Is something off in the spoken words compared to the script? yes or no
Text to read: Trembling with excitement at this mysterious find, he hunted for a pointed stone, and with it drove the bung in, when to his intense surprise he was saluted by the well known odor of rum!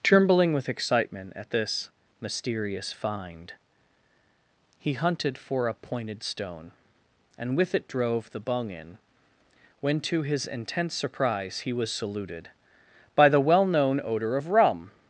no